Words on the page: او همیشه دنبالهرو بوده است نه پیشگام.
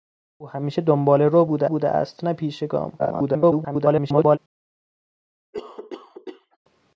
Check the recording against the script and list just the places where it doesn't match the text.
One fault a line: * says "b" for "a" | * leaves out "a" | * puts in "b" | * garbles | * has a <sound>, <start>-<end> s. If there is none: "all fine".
* puts in "بوده"
* garbles
* has a cough, 5.5-6.6 s